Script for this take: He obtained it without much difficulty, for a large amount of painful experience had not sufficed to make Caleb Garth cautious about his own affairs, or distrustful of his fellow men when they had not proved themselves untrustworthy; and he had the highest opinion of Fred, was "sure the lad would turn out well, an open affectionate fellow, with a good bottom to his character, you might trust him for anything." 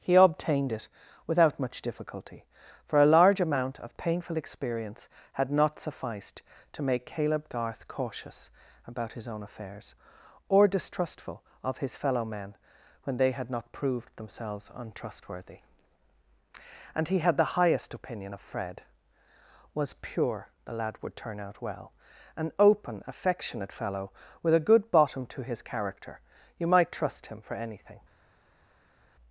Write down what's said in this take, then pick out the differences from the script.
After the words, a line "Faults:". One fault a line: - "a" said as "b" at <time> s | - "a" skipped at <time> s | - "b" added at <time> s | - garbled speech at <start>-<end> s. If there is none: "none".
He obtained it without much difficulty, for a large amount of painful experience had not sufficed to make Caleb Garth cautious about his own affairs, or distrustful of his fellow men when they had not proved themselves untrustworthy; and he had the highest opinion of Fred, was "pure the lad would turn out well, an open affectionate fellow, with a good bottom to his character, you might trust him for anything."
Faults:
- "sure" said as "pure" at 19.9 s